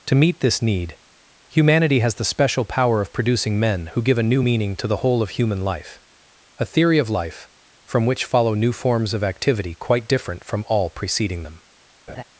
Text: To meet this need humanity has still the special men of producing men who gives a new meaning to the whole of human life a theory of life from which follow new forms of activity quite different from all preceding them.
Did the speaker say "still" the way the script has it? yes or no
no